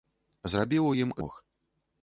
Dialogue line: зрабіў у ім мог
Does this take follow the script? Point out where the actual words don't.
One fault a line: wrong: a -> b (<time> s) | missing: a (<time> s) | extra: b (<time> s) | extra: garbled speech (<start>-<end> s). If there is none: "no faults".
no faults